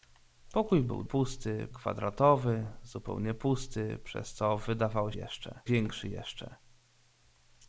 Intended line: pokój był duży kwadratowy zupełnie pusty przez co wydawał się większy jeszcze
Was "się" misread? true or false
true